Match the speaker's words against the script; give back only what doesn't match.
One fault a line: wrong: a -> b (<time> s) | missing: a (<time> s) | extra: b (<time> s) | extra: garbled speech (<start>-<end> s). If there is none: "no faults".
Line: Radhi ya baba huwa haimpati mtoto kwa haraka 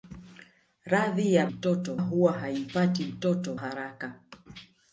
wrong: baba -> mtoto (1.5 s)
missing: kwa (3.5 s)